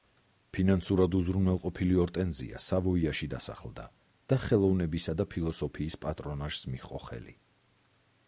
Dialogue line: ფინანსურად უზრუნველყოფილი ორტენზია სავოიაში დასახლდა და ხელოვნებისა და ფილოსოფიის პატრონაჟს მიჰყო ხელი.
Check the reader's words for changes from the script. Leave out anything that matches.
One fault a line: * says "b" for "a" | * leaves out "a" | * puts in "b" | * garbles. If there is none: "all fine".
all fine